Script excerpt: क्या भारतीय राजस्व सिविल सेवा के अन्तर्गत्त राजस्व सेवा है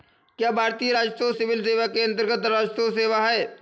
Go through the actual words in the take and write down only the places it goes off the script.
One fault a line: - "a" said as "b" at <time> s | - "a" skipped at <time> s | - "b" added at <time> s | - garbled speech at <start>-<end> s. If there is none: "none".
none